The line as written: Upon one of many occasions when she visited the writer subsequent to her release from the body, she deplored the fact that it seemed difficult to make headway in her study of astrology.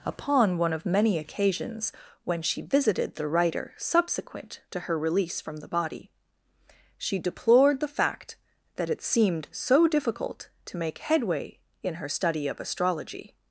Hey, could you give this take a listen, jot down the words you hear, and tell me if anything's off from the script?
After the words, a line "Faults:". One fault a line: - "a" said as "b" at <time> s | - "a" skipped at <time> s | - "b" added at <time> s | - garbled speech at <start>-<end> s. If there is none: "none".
Upon one of many occasions when she visited the writer subsequent to her release from the body, she deplored the fact that it seemed so difficult to make headway in her study of astrology.
Faults:
- "so" added at 9.5 s